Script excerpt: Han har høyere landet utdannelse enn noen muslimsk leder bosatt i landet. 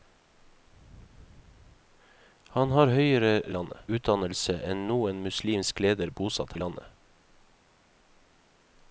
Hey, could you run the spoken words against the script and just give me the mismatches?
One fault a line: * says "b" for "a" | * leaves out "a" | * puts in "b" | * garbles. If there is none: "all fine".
all fine